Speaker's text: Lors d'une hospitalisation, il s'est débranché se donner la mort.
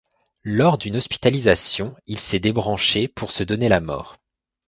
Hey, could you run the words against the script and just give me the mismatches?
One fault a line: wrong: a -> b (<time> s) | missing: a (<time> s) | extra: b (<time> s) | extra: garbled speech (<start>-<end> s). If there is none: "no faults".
extra: pour (3.0 s)